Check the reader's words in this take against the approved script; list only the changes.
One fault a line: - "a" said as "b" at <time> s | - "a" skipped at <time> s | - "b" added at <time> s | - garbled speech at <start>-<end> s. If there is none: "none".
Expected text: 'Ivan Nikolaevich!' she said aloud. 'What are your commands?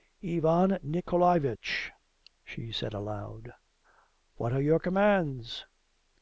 none